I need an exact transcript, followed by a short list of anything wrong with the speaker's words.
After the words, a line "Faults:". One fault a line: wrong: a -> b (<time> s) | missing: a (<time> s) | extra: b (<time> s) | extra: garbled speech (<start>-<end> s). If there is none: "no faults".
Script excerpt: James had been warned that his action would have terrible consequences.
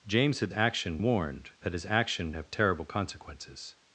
James had action warned that his action have terrible consequences.
Faults:
wrong: been -> action (0.5 s)
missing: would (2.3 s)